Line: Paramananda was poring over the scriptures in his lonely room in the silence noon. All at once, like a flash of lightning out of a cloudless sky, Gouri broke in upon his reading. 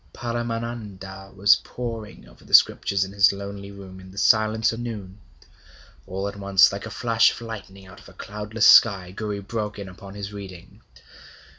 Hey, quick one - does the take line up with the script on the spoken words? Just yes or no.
yes